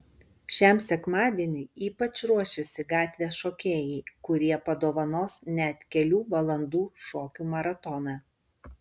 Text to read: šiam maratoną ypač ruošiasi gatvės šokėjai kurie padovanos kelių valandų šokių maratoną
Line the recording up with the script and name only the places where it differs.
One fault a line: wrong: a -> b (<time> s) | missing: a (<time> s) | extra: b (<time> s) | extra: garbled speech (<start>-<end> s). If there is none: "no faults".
wrong: maratoną -> sekmadieniui (0.8 s)
extra: net (5.6 s)